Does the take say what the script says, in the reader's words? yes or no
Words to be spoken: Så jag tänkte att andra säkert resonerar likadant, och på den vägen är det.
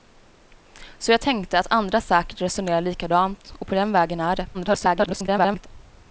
no